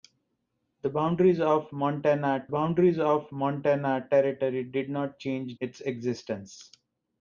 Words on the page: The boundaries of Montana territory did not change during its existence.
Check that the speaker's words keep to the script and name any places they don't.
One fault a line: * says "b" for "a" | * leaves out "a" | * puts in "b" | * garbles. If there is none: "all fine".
* puts in "boundaries of Montana"
* leaves out "during"